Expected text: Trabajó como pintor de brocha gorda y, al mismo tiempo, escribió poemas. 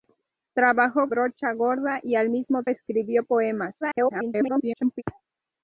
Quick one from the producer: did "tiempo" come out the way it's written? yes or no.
no